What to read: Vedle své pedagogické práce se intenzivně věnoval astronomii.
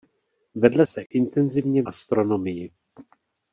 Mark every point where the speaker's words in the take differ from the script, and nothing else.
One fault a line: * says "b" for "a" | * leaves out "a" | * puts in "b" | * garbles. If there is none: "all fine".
* leaves out "své pedagogické práce"
* leaves out "věnoval"